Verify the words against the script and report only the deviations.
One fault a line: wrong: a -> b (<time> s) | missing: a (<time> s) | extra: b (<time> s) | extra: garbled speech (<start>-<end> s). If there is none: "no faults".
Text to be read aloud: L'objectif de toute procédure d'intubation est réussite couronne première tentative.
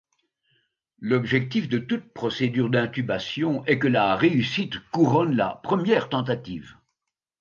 extra: que la (3.8 s)
extra: la (5.3 s)